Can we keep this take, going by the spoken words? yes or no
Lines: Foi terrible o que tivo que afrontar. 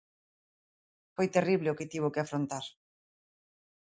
yes